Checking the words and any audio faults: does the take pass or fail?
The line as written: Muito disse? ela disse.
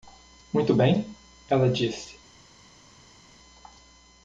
fail